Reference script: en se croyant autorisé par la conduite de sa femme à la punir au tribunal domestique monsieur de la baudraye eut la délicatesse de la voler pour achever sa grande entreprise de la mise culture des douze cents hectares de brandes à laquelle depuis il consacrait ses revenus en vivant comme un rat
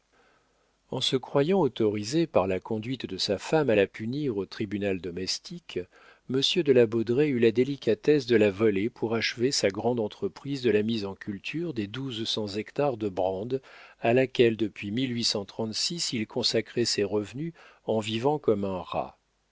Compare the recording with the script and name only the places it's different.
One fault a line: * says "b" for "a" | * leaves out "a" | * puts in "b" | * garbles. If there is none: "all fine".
* puts in "en"